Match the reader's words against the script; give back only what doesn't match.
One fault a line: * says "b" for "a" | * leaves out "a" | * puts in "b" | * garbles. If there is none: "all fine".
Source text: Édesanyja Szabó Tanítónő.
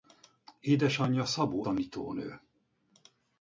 all fine